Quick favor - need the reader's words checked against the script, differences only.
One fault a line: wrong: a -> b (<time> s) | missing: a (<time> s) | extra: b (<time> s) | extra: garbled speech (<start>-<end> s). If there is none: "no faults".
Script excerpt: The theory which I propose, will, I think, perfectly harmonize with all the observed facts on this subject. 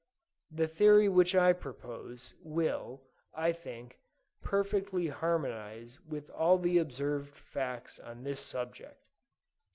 no faults